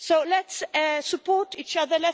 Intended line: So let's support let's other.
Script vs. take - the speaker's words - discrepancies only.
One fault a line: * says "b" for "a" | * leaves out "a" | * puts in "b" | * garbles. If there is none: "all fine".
* says "each" for "let's"